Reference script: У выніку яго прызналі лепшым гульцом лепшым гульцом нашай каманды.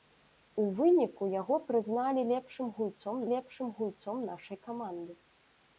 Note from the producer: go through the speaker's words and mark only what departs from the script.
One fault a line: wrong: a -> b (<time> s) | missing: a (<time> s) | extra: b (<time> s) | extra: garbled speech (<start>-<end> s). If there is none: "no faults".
no faults